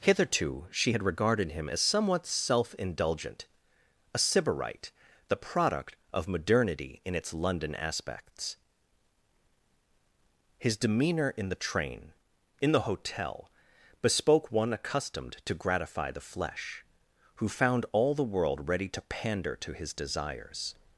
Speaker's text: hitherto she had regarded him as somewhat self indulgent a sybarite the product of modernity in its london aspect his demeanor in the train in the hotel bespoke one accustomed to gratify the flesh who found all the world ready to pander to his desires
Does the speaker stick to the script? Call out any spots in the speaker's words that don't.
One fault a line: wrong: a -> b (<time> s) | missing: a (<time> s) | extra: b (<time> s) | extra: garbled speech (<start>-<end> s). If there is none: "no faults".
wrong: aspect -> aspects (7.7 s)